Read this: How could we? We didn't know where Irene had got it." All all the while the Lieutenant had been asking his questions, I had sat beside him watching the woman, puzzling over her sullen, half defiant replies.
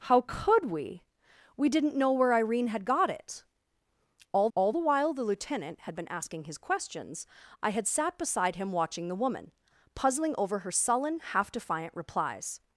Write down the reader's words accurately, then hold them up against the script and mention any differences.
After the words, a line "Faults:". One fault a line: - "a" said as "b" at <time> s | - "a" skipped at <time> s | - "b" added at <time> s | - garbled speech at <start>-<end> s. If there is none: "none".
How could we? We didn't know where Irene had got it." All all the while the Lieutenant had been asking his questions, I had sat beside him watching the woman, puzzling over her sullen, half defiant replies.
Faults:
none